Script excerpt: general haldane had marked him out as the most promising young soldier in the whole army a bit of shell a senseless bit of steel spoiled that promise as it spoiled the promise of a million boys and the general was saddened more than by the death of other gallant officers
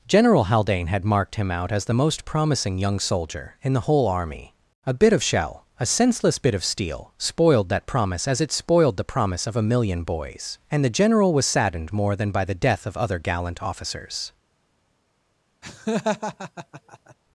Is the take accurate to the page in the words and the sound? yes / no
no